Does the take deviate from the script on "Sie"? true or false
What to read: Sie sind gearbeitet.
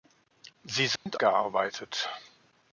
false